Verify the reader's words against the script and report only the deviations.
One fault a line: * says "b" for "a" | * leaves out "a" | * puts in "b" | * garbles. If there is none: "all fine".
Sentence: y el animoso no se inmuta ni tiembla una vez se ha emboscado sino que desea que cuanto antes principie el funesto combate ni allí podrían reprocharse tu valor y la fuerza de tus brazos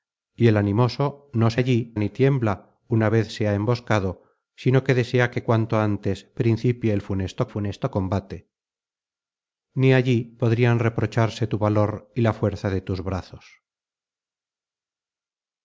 * says "allí" for "inmuta"
* puts in "funesto"